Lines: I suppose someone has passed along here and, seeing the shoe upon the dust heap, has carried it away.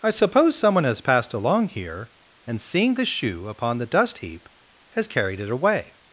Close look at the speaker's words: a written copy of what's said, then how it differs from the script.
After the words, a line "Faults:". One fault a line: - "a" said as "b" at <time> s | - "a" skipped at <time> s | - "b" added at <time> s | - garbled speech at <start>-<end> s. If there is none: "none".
I suppose someone has passed along here and, seeing the shoe upon the dust heap, has carried it away.
Faults:
none